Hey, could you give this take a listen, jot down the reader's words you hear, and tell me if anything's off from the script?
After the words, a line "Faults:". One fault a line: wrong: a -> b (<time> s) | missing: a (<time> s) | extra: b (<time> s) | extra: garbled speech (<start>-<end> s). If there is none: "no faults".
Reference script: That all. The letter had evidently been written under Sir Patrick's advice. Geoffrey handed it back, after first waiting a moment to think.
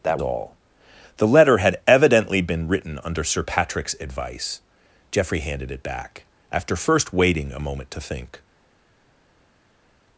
That all. The letter had evidently been written under Sir Patrick's advice. Geoffrey handed it back, after first waiting a moment to think.
Faults:
no faults